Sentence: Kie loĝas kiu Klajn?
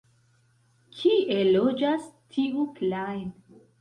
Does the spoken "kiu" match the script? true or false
false